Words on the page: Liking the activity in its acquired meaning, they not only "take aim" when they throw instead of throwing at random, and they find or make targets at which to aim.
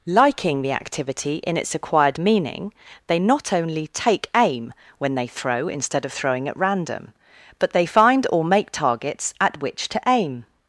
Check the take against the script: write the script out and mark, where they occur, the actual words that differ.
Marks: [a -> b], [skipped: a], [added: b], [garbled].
Liking the activity in its acquired meaning, they not only "take aim" when they throw instead of throwing at random, [and -> but] they find or make targets at which to aim.